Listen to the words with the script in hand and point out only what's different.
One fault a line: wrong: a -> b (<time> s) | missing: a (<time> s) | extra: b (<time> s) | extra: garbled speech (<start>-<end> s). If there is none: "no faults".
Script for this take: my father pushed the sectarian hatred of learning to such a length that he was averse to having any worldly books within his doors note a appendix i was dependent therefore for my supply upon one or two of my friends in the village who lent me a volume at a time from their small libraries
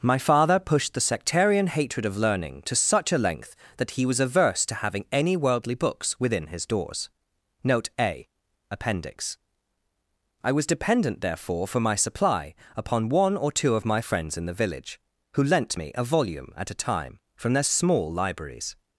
no faults